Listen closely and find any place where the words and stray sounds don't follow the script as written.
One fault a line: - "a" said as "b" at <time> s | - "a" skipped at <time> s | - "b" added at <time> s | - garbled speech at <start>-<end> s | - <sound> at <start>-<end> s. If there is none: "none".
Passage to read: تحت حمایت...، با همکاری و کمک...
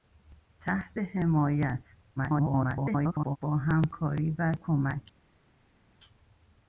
- garbled speech at 2.2-3.4 s